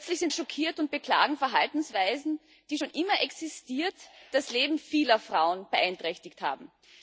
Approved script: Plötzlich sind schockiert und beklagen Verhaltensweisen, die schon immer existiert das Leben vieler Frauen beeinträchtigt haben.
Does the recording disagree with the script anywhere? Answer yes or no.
no